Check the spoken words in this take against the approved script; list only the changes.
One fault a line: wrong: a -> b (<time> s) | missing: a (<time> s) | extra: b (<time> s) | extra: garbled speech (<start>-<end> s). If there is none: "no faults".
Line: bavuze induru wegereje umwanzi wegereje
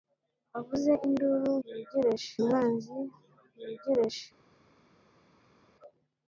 no faults